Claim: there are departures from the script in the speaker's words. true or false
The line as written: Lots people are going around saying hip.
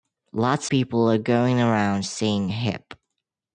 false